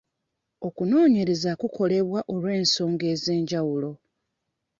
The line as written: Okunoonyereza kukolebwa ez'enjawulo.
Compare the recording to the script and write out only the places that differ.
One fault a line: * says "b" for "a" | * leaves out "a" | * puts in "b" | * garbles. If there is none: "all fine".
* puts in "olw'ensonga"